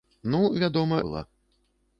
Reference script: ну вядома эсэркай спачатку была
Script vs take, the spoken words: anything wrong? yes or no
yes